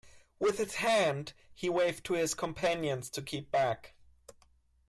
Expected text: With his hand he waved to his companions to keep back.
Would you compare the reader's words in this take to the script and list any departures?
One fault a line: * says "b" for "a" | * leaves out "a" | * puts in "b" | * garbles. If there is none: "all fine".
all fine